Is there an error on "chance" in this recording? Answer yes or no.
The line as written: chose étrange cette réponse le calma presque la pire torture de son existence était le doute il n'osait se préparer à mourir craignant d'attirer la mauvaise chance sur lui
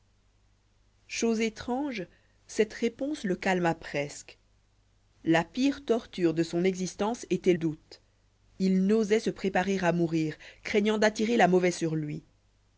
yes